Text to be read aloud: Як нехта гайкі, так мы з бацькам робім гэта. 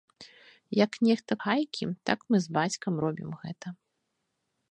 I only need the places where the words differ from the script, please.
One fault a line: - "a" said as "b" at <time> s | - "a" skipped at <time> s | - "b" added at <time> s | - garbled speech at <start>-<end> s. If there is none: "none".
none